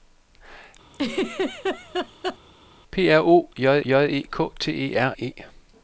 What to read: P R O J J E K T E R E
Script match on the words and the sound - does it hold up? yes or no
no